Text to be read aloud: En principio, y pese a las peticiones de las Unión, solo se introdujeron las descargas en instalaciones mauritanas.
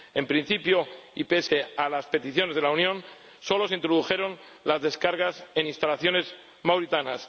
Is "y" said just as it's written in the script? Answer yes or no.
yes